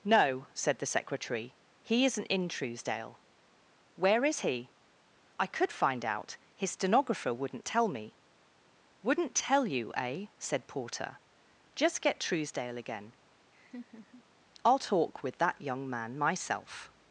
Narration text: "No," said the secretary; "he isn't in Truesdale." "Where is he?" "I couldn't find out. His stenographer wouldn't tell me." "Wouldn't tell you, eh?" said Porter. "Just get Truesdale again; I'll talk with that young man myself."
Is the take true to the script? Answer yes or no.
no